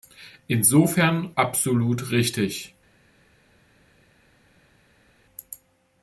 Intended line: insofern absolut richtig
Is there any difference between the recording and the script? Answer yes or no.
no